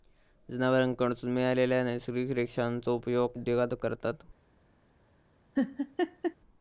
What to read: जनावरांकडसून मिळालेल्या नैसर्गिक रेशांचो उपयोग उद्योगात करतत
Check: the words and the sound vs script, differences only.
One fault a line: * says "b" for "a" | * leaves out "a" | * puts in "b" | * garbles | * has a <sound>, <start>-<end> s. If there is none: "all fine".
* has a laugh, 5.6-6.4 s